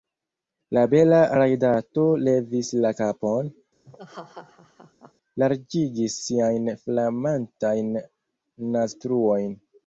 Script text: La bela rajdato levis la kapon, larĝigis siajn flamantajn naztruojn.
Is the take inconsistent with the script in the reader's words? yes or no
no